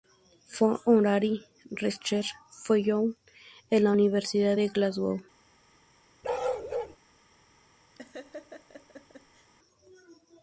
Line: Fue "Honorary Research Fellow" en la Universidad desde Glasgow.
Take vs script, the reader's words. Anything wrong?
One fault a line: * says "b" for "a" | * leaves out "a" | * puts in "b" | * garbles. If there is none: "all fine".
* says "de" for "desde"